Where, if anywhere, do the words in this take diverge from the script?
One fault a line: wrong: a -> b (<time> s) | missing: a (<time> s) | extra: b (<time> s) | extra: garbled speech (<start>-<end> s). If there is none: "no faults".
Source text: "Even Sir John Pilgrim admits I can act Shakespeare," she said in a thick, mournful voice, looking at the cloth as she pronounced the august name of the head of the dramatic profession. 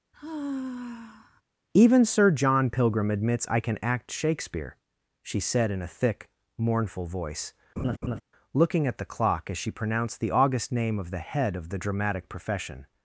wrong: cloth -> clock (9.0 s)